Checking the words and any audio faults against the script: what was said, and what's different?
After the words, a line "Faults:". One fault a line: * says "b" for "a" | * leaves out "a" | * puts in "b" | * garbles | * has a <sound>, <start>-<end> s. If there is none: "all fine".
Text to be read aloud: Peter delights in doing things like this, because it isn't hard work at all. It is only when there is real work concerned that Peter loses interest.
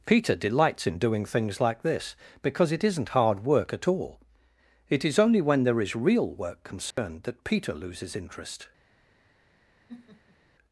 Peter delights in doing things like this, because it isn't hard work at all. It is only when there is real work concerned that Peter loses interest.
Faults:
* has a dropout, 6.9-7.0 s
* has a laugh, 9.9-10.4 s